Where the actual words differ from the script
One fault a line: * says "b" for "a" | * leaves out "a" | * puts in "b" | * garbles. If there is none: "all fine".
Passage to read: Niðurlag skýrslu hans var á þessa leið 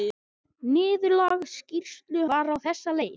* leaves out "hans"